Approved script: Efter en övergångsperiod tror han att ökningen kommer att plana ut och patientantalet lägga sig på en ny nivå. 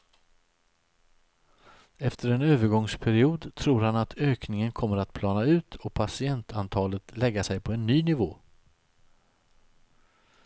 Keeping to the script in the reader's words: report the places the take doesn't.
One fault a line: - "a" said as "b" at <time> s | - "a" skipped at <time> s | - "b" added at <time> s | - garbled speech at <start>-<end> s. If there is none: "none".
none